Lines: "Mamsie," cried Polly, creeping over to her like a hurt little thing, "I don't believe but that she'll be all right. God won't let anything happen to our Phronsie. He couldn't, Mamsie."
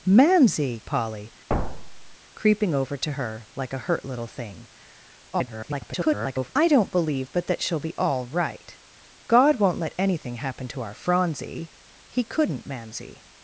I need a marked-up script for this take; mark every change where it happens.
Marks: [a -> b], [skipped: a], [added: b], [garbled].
"Mamsie," [skipped: cried] Polly, creeping over to her like a hurt little thing, [garbled] "I don't believe but that she'll be all right. God won't let anything happen to our Phronsie. He couldn't, Mamsie."